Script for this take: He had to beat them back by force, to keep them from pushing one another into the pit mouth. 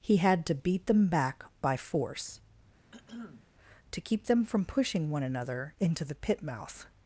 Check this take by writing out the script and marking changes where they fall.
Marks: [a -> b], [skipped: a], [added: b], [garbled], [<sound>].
He had to beat them back by force, [throat clearing] to keep them from pushing one another into the pit mouth.